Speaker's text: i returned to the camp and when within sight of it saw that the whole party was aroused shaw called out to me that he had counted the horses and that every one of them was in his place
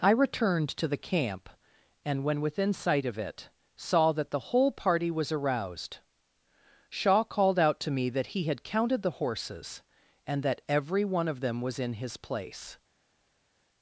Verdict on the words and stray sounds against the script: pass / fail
pass